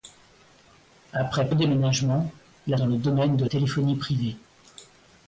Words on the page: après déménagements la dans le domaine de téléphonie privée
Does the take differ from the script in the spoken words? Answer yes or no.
no